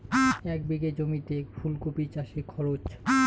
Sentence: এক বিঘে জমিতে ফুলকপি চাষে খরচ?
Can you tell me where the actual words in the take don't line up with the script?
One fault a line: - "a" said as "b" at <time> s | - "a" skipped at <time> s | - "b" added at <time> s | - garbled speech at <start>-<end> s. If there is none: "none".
none